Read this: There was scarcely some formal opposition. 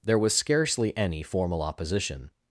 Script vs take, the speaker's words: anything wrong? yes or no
yes